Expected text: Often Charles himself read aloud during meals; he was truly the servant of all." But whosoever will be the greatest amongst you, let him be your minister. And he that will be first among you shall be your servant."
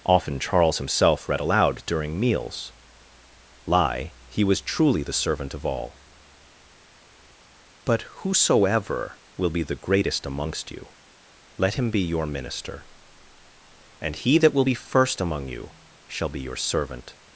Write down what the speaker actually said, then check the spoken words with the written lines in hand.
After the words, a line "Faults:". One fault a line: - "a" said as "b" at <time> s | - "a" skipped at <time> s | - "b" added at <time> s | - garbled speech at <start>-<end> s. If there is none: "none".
Often Charles himself read aloud during meals; lie he was truly the servant of all." But whosoever will be the greatest amongst you, let him be your minister. And he that will be first among you shall be your servant."
Faults:
- "lie" added at 3.6 s